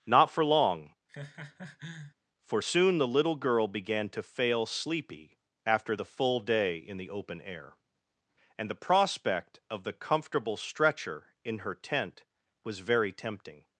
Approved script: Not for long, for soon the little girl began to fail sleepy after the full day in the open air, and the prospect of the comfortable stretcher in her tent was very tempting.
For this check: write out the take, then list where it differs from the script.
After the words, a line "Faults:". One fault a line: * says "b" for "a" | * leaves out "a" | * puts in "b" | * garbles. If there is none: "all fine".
Not for long, for soon the little girl began to fail sleepy after the full day in the open air, and the prospect of the comfortable stretcher in her tent was very tempting.
Faults:
all fine